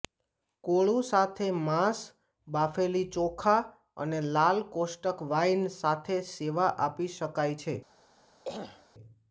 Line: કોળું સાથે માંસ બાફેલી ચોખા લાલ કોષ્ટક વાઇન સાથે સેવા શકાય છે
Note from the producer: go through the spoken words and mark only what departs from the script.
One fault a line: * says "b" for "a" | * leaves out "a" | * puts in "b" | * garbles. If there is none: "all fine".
* puts in "અને"
* puts in "આપી"